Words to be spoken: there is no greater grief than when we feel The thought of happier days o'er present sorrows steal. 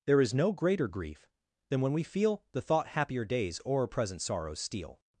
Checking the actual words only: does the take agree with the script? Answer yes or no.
no